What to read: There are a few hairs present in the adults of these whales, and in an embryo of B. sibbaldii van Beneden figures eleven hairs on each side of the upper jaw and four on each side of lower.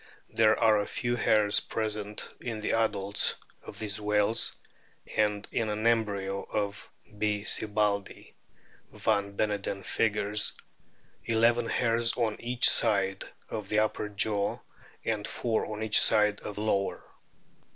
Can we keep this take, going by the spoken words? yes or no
yes